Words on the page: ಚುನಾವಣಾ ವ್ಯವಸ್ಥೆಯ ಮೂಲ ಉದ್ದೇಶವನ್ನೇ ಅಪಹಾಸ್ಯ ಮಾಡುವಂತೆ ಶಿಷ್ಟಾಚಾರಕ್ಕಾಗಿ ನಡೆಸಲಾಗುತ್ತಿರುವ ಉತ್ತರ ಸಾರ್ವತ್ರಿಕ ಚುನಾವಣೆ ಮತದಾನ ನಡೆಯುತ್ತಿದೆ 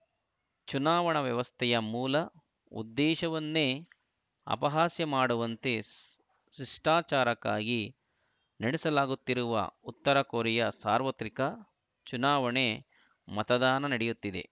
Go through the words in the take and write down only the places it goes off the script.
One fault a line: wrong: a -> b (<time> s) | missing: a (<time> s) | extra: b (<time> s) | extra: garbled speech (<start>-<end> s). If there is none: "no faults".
extra: ಕೊರಿಯಾ (10.2 s)